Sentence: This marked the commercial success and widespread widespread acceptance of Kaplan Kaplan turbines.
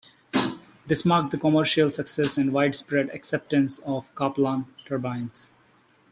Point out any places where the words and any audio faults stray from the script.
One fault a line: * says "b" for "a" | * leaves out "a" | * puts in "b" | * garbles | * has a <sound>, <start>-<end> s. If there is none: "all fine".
* leaves out "widespread"
* leaves out "Kaplan"